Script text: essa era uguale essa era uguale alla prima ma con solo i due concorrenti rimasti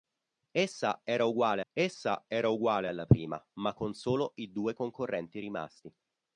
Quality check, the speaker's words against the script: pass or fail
pass